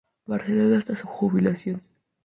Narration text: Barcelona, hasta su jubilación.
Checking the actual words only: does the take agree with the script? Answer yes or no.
yes